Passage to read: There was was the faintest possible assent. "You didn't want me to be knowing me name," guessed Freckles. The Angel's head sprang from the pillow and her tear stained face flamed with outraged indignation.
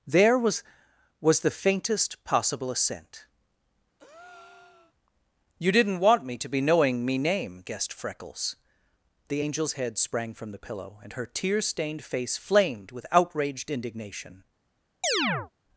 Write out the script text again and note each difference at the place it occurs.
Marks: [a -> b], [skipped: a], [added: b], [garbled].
There was was the faintest possible assent. "You didn't want me to be knowing me name," guessed Freckles. The Angel's head sprang from the pillow and her tear stained face flamed with outraged indignation.